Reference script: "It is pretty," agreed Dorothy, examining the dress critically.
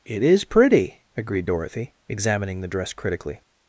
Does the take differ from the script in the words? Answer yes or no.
no